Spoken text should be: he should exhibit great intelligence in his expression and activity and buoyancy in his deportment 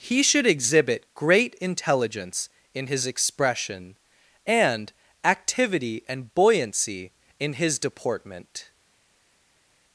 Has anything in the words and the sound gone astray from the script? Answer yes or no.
no